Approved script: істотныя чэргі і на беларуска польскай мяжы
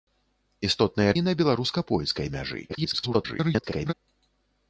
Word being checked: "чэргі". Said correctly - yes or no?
no